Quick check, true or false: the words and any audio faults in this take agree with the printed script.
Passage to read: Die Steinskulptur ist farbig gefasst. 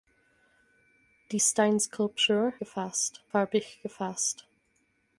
false